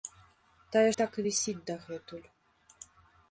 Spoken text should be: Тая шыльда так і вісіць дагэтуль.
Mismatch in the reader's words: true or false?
true